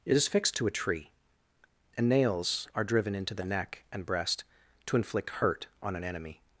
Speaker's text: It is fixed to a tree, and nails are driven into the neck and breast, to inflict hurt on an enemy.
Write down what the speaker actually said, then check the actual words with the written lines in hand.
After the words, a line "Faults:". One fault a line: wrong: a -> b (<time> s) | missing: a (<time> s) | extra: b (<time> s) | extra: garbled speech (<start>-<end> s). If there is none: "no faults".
It is fixed to a tree, and nails are driven into the neck and breast, to inflict hurt on an enemy.
Faults:
no faults